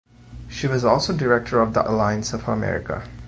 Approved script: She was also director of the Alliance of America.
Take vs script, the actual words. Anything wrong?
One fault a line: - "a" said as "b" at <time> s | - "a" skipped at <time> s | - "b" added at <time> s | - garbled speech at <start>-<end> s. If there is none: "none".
none